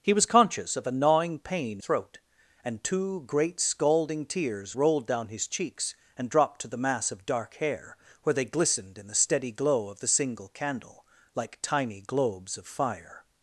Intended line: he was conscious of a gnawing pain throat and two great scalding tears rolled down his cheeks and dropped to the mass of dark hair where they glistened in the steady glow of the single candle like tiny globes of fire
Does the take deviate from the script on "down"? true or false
false